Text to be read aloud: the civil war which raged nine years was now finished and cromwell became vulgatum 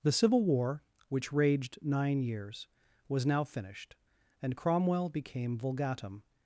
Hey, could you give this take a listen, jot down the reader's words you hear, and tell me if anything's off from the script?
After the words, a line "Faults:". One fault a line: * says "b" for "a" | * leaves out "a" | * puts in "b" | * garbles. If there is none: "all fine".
the civil war which raged nine years was now finished and cromwell became vulgatum
Faults:
all fine